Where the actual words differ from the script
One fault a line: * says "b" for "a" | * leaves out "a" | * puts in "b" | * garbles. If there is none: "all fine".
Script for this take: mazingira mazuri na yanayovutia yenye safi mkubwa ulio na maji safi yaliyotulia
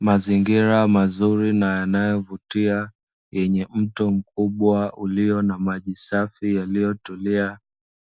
* says "mto" for "safi"